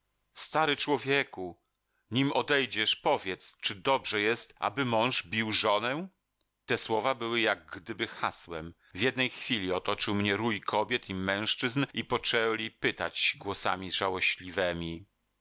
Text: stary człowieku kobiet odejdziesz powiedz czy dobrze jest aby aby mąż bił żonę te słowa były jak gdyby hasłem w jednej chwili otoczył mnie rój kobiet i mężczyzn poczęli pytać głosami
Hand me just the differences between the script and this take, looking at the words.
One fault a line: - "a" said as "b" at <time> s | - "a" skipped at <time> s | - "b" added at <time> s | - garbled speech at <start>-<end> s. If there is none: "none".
- "kobiet" said as "nim" at 2.1 s
- "aby" skipped at 4.9 s
- "i" added at 11.9 s